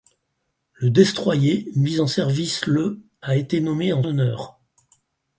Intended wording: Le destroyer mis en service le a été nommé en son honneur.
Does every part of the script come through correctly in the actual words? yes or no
no